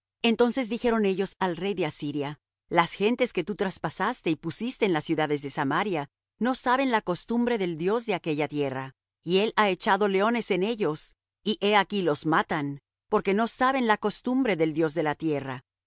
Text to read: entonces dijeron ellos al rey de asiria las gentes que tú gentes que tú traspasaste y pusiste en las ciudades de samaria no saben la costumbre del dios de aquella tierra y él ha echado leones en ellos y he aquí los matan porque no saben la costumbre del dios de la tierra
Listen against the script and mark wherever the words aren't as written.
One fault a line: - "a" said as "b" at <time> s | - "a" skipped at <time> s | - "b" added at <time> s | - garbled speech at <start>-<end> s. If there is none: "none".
- "gentes que tú" skipped at 3.5 s